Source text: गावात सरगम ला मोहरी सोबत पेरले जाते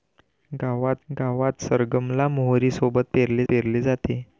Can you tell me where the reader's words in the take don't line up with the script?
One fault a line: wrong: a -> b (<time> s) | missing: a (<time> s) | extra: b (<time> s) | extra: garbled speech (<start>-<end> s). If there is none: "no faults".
extra: गावात (1.1 s)
extra: पेरले (3.5 s)